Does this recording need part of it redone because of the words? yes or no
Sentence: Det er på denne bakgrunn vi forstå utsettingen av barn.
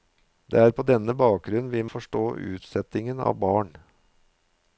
no